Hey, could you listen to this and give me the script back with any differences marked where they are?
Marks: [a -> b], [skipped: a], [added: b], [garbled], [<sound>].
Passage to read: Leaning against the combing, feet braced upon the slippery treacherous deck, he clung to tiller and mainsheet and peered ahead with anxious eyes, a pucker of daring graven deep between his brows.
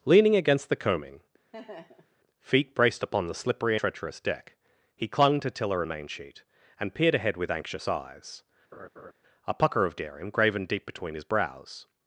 Leaning against the combing, [laugh] feet braced upon the slippery treacherous deck, he clung to tiller and mainsheet and peered ahead with anxious eyes, [laugh] a pucker of daring graven deep between his brows.